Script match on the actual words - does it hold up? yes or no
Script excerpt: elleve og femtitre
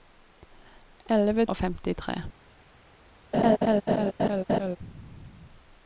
yes